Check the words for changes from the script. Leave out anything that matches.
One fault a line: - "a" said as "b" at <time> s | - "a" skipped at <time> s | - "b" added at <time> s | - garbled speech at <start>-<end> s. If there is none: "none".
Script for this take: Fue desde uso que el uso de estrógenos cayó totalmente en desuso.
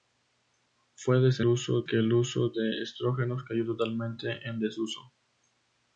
none